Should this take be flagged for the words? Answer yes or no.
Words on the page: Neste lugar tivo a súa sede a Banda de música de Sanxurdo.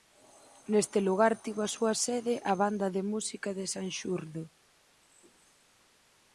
no